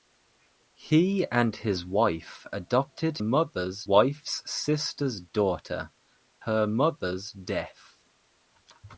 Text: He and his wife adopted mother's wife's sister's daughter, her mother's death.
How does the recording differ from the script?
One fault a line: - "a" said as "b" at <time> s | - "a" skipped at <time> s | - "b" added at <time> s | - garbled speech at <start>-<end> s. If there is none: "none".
none